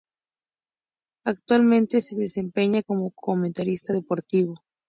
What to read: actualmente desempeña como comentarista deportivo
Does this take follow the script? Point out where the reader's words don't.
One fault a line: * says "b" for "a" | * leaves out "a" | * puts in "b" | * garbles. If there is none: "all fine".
* puts in "se"